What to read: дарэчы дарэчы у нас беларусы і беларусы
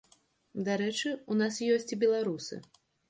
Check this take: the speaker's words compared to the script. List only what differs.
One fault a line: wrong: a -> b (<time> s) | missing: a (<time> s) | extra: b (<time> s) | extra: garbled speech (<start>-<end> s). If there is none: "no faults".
missing: дарэчы (1.1 s)
wrong: беларусы -> ёсць (1.8 s)